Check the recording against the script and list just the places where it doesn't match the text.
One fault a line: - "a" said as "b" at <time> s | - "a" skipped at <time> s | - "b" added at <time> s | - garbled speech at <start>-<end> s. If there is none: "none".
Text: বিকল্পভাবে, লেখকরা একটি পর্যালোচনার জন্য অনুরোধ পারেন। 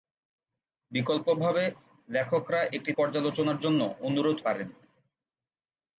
none